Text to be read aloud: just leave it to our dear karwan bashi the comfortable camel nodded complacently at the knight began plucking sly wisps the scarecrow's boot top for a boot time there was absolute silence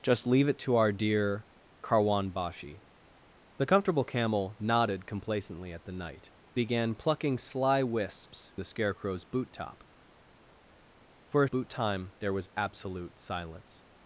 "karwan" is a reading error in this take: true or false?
false